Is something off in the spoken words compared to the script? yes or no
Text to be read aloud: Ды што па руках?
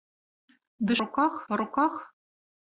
yes